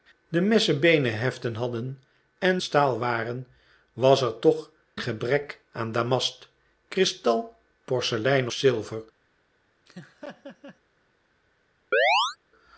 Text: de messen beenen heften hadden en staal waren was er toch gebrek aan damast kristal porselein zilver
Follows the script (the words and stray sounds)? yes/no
no